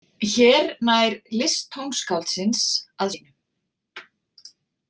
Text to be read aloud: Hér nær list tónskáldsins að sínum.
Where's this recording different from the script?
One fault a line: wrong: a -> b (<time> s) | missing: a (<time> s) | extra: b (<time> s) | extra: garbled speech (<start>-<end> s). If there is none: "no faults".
no faults